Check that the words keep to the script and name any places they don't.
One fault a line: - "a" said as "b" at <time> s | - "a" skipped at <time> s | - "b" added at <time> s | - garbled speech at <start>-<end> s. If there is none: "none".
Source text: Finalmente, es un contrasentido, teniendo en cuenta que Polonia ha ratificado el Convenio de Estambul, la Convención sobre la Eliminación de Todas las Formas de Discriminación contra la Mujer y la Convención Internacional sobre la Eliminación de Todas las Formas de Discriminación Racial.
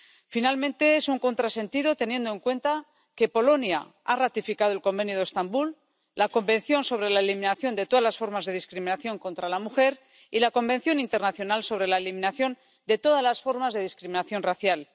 none